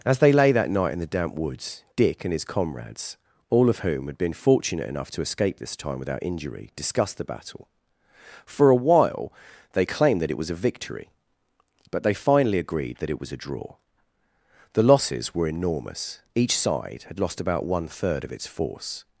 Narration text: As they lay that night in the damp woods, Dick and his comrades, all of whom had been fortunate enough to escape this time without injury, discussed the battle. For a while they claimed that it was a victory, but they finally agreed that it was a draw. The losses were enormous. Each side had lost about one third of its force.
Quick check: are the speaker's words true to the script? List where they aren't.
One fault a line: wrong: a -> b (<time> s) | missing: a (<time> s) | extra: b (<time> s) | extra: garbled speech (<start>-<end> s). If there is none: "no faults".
no faults